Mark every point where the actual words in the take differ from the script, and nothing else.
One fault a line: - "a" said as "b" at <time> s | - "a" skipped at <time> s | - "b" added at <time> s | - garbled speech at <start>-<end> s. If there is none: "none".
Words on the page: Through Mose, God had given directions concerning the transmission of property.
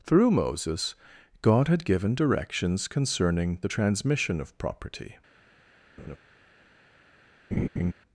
- "Mose" said as "Moses" at 0.3 s